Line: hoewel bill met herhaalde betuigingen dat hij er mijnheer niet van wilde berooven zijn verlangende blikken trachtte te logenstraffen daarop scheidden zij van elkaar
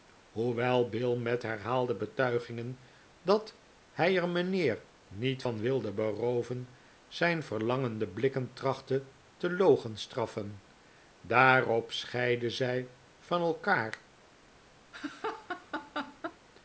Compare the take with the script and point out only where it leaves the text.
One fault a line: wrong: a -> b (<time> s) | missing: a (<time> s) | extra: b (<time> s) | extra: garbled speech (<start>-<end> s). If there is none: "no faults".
no faults